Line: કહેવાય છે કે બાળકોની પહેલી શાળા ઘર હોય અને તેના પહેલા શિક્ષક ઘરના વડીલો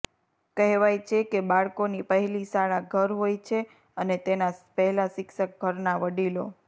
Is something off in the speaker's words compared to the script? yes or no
yes